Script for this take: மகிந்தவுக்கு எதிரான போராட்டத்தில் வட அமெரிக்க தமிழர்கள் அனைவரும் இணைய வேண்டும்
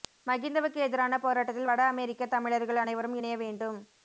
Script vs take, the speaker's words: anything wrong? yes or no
no